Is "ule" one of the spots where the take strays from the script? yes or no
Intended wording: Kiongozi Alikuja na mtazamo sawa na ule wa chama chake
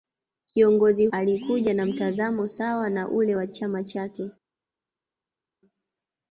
no